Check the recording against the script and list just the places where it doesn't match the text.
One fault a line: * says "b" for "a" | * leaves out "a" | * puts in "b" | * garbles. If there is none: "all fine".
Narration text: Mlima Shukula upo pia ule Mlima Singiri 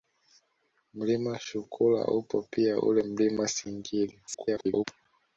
* garbles